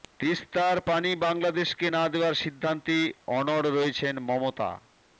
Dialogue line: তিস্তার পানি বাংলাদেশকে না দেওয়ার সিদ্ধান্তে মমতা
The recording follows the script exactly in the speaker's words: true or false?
false